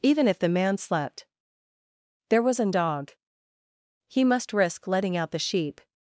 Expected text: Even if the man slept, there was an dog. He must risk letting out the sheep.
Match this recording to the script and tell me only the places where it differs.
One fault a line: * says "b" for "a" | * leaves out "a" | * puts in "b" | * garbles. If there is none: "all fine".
all fine